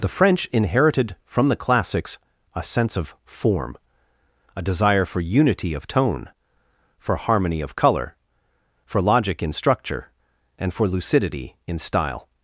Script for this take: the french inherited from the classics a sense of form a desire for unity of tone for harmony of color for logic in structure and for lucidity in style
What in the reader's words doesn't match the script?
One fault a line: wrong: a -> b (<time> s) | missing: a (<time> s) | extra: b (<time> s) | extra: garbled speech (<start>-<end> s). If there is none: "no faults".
no faults